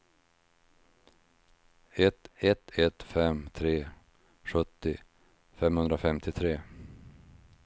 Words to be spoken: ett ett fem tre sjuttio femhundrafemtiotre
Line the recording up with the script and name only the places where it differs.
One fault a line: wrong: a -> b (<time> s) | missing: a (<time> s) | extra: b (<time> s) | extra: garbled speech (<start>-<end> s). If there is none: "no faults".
extra: ett (2.8 s)